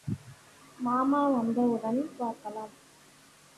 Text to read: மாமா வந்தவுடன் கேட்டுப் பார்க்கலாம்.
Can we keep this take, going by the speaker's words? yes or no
no